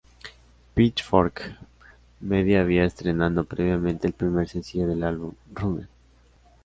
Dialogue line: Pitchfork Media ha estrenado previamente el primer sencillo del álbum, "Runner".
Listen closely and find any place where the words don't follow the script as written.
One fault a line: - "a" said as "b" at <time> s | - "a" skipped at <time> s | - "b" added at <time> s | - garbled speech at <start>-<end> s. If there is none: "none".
- "ha" said as "había" at 2.6 s